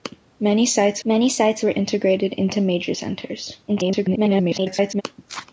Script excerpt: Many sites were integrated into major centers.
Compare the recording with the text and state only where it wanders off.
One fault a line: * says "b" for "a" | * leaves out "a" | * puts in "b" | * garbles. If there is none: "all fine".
* puts in "many sites"
* garbles